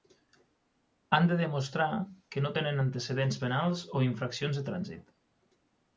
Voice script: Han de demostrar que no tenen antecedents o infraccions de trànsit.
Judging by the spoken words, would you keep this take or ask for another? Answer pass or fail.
fail